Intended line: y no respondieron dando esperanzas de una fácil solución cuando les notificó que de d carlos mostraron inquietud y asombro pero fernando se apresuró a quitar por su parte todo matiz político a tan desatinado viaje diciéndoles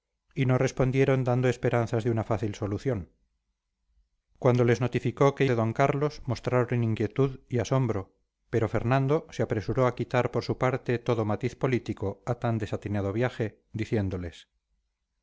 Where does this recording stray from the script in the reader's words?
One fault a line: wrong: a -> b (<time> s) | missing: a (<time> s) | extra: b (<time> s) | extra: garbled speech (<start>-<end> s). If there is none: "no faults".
no faults